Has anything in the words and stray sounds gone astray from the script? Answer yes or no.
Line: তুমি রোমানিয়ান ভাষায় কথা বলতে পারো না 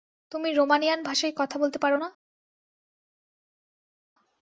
no